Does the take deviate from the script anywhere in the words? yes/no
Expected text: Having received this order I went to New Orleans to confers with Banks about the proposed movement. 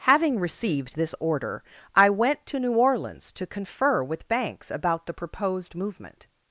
yes